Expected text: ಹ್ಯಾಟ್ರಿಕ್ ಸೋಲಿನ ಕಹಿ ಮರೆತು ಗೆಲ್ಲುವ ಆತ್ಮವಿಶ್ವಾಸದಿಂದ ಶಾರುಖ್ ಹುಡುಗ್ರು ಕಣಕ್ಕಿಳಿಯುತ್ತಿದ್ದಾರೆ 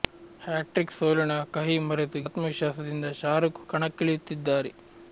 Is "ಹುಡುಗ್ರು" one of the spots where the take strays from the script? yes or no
yes